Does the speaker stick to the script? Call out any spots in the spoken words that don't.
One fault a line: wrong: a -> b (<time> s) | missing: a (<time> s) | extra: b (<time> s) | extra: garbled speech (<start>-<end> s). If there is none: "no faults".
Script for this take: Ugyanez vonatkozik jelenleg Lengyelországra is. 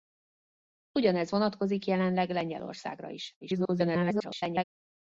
extra: garbled speech (3.4-4.6 s)